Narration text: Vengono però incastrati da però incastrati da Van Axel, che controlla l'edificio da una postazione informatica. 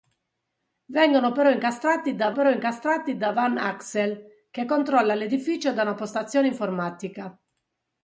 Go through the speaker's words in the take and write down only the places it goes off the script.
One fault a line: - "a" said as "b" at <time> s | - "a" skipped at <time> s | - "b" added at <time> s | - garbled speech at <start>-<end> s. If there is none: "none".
none